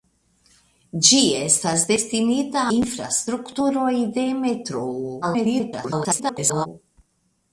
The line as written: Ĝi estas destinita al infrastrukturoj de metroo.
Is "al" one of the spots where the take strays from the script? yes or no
yes